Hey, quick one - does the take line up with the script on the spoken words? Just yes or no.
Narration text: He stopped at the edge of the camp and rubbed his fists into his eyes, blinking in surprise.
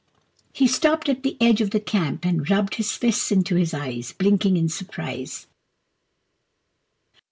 yes